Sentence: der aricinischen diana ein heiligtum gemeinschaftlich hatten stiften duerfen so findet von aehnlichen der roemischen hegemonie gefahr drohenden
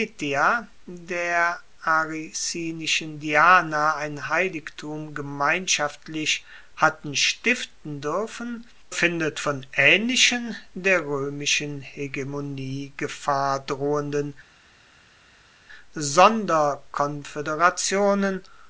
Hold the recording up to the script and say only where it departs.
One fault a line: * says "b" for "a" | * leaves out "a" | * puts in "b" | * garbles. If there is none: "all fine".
* leaves out "so"